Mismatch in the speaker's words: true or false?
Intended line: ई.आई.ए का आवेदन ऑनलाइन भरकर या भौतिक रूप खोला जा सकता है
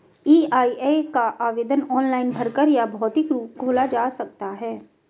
false